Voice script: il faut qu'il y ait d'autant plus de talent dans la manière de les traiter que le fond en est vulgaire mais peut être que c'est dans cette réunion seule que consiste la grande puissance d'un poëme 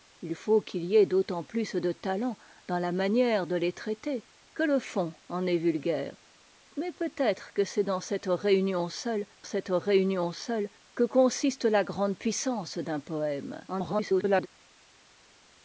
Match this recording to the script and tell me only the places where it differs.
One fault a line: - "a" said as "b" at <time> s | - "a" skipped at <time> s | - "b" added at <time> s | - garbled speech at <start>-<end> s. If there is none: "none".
- "cette réunion seule" added at 9.4 s
- garbled speech at 13.7-14.5 s